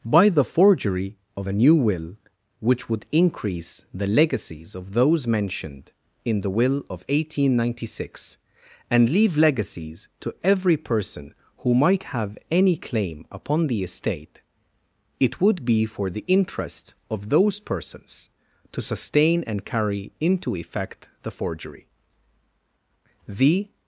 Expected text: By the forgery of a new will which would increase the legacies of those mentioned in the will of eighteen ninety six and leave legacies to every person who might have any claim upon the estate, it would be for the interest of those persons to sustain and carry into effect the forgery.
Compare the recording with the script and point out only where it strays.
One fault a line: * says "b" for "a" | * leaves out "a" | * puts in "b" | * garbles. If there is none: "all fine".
* puts in "The"